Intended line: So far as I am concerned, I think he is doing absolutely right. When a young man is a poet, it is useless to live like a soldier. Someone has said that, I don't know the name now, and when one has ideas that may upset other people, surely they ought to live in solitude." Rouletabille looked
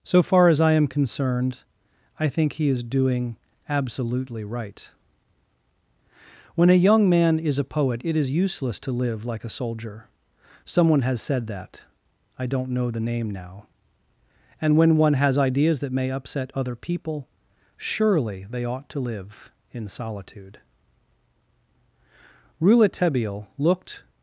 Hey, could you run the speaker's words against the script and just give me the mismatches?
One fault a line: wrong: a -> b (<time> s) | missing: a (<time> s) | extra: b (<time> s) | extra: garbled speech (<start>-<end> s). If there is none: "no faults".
no faults